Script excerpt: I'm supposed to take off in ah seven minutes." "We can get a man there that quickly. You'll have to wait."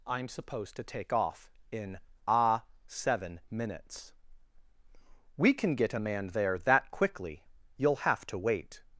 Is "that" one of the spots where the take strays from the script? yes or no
no